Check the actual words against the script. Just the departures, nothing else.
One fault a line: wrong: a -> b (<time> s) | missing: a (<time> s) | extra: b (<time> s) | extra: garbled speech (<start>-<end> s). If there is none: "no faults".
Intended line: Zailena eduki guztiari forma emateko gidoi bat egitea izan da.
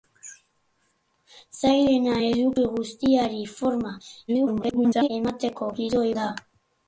extra: garbled speech (4.3-5.1 s)
missing: bat egitea izan (6.1 s)